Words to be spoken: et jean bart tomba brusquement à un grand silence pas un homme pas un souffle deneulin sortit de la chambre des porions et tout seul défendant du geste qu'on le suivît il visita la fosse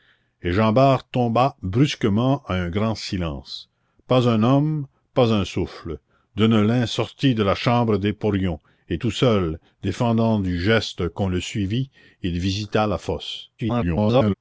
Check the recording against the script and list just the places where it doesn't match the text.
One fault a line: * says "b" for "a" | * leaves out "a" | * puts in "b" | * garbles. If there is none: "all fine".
* garbles